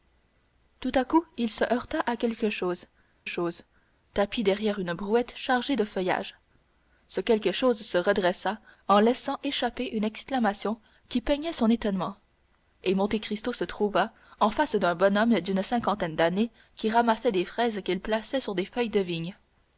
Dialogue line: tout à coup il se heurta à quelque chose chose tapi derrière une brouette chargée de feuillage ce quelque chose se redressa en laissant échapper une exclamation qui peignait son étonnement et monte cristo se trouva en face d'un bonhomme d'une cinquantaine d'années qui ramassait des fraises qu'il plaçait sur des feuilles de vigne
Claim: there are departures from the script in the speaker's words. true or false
false